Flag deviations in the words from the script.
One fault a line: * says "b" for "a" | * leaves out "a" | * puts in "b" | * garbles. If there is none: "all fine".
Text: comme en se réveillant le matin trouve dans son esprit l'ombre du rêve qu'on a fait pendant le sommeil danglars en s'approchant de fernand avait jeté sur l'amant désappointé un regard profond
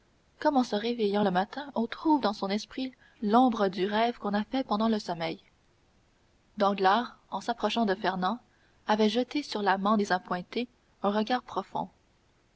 * puts in "on"